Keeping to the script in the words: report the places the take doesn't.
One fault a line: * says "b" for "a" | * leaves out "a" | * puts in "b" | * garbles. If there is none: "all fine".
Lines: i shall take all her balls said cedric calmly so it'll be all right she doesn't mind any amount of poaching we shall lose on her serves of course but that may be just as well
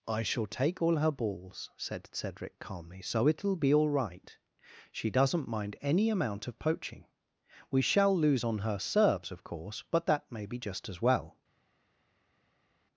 all fine